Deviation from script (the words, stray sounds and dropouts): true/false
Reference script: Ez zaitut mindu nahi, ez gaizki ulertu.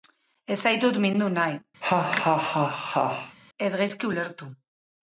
true